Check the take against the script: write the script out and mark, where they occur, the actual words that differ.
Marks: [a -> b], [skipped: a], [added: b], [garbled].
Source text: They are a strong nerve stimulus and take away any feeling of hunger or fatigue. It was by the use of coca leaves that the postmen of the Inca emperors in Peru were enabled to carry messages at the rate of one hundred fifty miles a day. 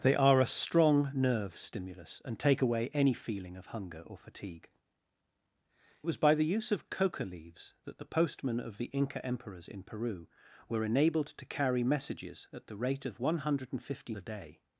They are a strong nerve stimulus and take away any feeling of hunger or fatigue. [skipped: It] was by the use of coca leaves that the postmen of the Inca emperors in Peru were enabled to carry messages at the rate of one hundred fifty [skipped: miles] a day.